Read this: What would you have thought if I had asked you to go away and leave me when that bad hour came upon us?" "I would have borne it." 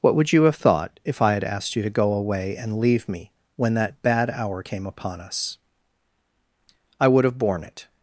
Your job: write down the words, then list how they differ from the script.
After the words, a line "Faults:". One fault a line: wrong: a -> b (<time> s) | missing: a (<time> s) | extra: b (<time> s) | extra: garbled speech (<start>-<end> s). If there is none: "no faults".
What would you have thought if I had asked you to go away and leave me when that bad hour came upon us?" "I would have borne it."
Faults:
no faults